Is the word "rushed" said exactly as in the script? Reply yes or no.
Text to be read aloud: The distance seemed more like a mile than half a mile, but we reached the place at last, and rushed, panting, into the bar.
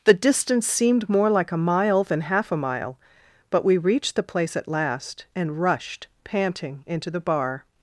yes